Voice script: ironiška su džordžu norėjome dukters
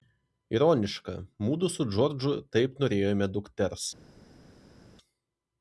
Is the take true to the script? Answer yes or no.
no